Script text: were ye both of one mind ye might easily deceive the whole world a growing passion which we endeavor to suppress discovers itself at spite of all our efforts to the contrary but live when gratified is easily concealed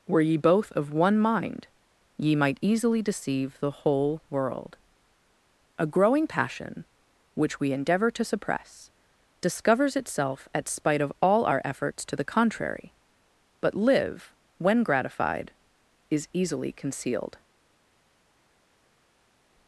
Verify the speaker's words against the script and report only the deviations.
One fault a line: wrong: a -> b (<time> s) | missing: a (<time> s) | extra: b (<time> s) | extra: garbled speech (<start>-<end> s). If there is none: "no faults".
no faults